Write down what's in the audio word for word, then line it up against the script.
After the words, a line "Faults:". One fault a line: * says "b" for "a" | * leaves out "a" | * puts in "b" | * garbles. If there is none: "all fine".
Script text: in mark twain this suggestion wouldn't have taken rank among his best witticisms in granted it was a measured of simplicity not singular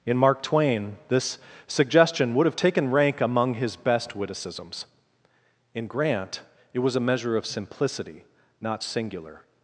in mark twain this suggestion would have taken rank among his best witticisms in grant it was a measure of simplicity not singular
Faults:
* says "would" for "wouldn't"
* says "grant" for "granted"
* says "measure" for "measured"